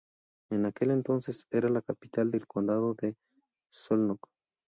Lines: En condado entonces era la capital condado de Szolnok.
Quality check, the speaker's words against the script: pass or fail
fail